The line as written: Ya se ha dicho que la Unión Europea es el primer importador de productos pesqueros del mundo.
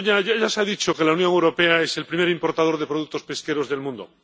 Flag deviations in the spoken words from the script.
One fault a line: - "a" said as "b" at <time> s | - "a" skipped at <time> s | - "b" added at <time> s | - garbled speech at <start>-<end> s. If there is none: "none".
none